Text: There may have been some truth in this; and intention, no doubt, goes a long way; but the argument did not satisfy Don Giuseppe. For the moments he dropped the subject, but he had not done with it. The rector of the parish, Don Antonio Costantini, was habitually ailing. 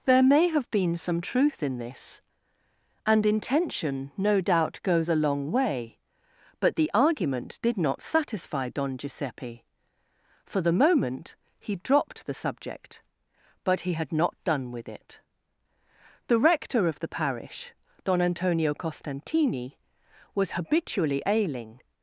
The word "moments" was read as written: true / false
false